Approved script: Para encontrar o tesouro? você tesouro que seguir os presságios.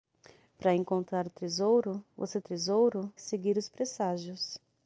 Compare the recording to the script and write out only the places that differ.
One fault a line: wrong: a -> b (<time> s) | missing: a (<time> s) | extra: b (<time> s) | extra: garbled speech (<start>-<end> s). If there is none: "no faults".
no faults